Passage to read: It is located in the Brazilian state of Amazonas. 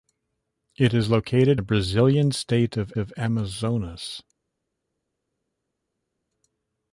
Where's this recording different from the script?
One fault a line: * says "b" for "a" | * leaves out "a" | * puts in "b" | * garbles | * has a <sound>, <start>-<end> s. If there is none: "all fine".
* leaves out "in"
* puts in "of"